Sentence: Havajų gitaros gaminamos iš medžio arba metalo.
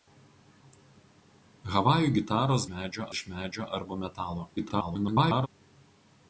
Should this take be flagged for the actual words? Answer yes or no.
yes